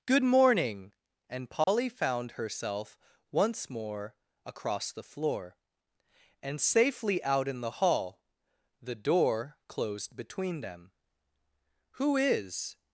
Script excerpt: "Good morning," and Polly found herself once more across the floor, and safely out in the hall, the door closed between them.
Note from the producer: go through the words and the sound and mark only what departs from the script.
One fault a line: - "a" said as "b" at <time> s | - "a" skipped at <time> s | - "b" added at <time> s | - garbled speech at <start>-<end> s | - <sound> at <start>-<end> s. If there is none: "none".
- dropout at 1.6-1.7 s
- "Who is" added at 12.0 s